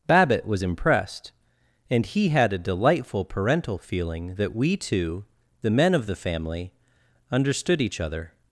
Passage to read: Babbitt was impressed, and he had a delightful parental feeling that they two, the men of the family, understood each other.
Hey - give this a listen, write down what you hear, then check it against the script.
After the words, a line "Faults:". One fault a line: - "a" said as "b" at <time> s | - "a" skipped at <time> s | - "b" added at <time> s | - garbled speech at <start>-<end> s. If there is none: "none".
Babbitt was impressed, and he had a delightful parental feeling that we two, the men of the family, understood each other.
Faults:
- "they" said as "we" at 4.6 s